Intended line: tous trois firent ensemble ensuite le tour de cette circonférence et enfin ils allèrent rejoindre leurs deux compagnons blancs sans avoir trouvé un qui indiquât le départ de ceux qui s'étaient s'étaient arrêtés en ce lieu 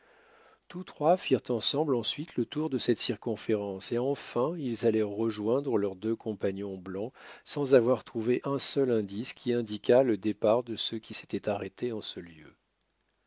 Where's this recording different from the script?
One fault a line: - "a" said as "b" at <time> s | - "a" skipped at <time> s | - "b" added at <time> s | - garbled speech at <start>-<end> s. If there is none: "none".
- "seul indice" added at 8.6 s
- "s'étaient" skipped at 11.5 s